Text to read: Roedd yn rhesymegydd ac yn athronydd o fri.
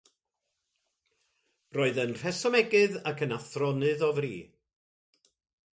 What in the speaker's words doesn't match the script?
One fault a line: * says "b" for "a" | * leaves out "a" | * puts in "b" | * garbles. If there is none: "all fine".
all fine